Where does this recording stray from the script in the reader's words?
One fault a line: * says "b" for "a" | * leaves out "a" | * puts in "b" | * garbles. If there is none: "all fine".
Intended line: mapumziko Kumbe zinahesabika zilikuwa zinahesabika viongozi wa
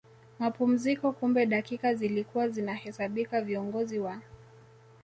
* says "dakika" for "zinahesabika"